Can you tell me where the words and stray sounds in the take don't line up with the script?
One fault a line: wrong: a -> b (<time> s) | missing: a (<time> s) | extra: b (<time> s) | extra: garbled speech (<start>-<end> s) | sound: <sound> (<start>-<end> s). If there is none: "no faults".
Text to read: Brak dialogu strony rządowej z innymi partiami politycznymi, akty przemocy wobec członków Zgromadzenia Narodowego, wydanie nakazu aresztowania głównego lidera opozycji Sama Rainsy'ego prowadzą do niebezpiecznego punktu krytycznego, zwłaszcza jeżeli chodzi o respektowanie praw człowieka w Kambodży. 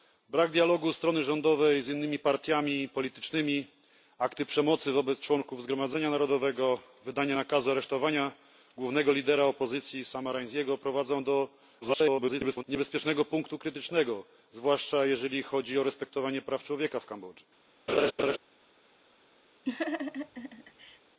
extra: garbled speech (11.8-12.6 s)
sound: laugh (17.9-18.4 s)
sound: laugh (19.7-21.0 s)